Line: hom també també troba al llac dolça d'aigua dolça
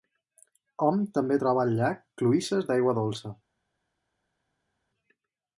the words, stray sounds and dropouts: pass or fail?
fail